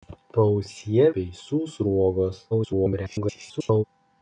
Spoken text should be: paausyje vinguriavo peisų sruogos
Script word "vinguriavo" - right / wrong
wrong